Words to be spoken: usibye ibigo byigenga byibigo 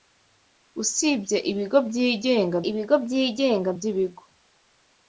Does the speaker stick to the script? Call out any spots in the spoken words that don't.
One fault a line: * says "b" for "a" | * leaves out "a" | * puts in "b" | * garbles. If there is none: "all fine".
* puts in "ibigo byigenga"